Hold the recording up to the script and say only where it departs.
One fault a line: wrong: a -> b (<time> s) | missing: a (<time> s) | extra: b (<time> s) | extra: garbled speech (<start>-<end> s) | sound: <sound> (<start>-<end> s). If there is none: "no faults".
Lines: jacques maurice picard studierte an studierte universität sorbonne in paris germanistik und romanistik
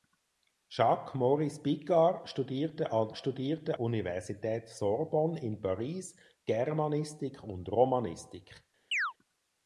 sound: chirp (8.9-9.1 s)